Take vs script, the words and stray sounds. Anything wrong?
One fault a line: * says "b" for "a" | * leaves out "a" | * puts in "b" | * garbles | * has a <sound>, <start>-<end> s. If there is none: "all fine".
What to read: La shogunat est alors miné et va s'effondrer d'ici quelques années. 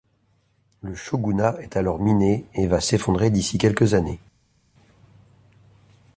* says "Le" for "La"